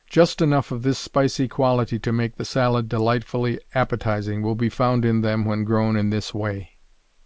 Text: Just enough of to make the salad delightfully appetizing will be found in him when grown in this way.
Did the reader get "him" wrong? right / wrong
wrong